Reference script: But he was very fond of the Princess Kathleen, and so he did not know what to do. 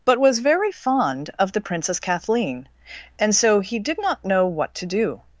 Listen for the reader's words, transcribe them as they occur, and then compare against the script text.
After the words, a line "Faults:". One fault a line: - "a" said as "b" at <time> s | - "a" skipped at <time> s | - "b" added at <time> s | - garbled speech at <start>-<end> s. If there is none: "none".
But was very fond of the Princess Kathleen, and so he did not know what to do.
Faults:
- "he" skipped at 0.2 s